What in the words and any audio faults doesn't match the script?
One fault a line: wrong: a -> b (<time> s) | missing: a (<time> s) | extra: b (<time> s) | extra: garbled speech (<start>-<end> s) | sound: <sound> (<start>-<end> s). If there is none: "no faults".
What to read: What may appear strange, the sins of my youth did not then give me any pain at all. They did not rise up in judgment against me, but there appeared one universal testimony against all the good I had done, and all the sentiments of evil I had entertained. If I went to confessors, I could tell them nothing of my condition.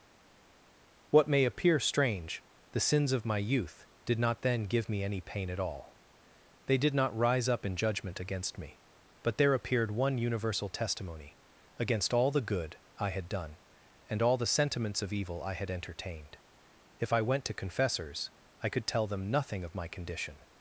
no faults